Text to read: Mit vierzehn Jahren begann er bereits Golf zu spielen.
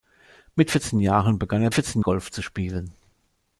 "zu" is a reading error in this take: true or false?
false